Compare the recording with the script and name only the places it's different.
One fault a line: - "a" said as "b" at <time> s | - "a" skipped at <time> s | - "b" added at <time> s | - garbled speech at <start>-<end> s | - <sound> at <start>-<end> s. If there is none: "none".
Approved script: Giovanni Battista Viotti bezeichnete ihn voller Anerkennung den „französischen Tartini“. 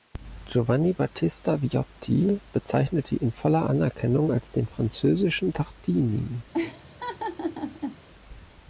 - "als" added at 4.3 s
- laugh at 6.5-8.0 s